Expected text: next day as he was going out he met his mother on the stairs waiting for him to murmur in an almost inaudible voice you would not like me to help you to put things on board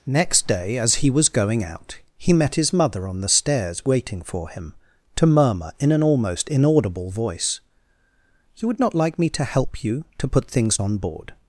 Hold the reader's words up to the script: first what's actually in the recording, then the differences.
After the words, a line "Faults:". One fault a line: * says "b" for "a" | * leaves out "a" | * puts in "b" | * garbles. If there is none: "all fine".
next day as he was going out he met his mother on the stairs waiting for him to murmur in an almost inaudible voice you would not like me to help you to put things on board
Faults:
all fine